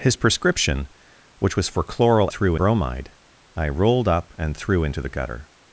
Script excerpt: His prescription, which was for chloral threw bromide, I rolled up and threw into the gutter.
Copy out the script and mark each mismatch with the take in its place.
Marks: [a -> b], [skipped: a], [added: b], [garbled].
His prescription, which was for chloral threw bromide, I rolled up and threw into the gutter.